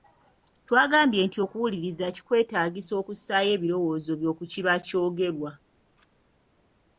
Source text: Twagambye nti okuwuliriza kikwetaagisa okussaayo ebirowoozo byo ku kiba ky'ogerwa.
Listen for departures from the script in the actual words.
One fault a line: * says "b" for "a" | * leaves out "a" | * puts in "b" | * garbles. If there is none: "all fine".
all fine